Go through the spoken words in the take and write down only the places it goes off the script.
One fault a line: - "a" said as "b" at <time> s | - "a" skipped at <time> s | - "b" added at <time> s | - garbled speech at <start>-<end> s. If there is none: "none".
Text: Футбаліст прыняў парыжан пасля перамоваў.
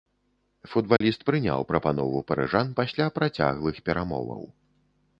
- "прапанову" added at 1.7 s
- "працяглых" added at 3.2 s